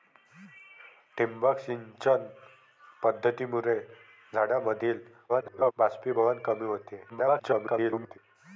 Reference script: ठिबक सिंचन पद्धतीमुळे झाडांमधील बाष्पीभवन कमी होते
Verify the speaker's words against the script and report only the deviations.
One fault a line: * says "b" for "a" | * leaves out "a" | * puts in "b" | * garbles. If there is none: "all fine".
* garbles
* garbles